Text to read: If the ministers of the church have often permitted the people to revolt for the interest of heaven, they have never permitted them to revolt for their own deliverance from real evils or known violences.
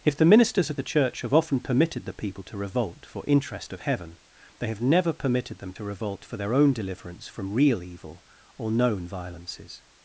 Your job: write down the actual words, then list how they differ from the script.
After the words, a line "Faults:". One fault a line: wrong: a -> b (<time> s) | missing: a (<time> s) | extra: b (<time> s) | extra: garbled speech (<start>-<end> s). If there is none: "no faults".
If the ministers of the church have often permitted the people to revolt for interest of heaven, they have never permitted them to revolt for their own deliverance from real evil or known violences.
Faults:
missing: the (3.2 s)
wrong: evils -> evil (7.8 s)